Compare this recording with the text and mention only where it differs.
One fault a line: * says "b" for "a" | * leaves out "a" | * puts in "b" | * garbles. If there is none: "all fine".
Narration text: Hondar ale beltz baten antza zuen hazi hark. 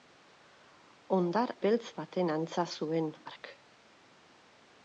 * leaves out "ale"
* leaves out "hazi"